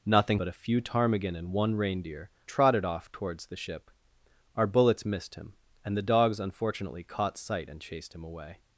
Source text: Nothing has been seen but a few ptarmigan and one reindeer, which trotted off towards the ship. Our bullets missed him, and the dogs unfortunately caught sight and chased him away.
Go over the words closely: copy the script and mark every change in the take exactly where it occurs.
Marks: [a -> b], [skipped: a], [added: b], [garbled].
Nothing [skipped: has been seen] but a few ptarmigan and one reindeer, [skipped: which] trotted off towards the ship. Our bullets missed him, and the dogs unfortunately caught sight and chased him away.